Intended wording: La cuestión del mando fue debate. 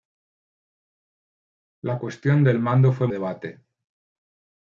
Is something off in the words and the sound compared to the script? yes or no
no